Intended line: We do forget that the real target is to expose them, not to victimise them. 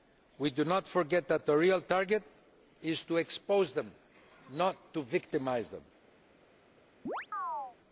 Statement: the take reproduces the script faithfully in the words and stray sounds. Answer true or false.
false